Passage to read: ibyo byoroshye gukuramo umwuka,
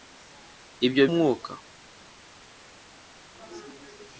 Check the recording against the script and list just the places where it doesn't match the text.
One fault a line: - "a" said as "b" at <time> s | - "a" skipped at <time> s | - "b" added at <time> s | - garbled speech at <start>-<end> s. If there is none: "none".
- "byoroshye gukuramo" skipped at 1.0 s